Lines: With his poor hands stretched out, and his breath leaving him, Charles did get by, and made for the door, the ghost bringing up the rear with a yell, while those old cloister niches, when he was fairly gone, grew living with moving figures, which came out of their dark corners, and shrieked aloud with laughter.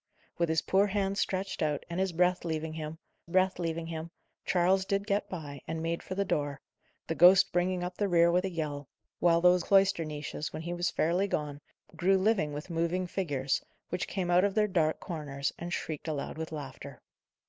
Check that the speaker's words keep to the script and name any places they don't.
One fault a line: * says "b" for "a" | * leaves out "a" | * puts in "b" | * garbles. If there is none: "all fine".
* puts in "breath leaving him"
* leaves out "old"